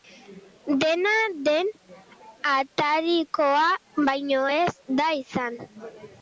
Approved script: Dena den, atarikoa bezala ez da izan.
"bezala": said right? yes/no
no